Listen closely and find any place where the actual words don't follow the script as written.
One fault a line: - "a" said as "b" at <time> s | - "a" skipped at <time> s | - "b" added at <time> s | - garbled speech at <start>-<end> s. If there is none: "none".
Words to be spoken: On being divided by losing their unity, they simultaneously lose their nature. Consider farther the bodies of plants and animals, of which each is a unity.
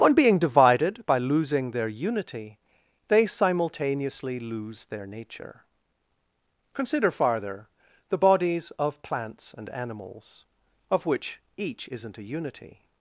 - "is" said as "isn't" at 11.9 s